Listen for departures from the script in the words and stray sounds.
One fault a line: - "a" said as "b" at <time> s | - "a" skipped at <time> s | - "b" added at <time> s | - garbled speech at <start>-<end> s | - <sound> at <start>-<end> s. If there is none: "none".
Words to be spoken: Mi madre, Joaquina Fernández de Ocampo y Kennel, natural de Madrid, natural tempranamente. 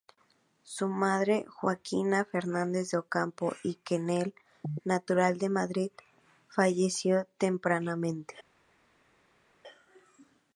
- "Mi" said as "Su" at 0.6 s
- "natural" said as "falleció" at 6.5 s